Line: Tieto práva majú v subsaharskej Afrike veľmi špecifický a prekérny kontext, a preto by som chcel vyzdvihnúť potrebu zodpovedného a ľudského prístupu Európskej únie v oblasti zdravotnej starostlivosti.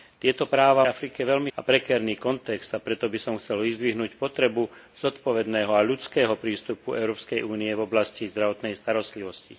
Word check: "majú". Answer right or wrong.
wrong